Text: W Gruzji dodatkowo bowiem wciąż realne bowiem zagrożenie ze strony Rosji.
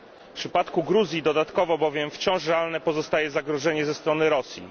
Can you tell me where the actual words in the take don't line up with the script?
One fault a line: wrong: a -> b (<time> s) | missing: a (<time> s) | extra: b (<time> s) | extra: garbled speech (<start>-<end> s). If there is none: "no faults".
extra: przypadku (0.3 s)
wrong: bowiem -> pozostaje (2.8 s)